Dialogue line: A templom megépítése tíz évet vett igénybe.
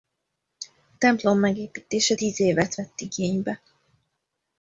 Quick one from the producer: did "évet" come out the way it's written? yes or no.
yes